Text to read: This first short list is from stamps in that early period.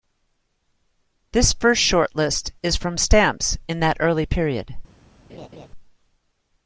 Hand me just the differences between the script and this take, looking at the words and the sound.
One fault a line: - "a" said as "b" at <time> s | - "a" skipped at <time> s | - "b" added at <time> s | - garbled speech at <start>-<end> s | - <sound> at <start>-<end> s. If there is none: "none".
- laugh at 5.3-5.7 s